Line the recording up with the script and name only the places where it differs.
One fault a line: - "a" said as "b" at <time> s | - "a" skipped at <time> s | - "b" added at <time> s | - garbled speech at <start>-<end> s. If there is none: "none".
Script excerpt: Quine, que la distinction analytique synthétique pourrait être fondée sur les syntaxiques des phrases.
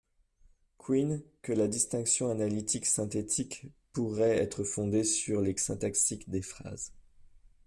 none